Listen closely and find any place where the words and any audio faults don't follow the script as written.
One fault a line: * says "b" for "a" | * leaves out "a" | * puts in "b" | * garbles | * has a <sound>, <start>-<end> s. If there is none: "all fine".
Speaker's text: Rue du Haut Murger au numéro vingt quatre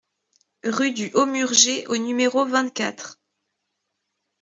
all fine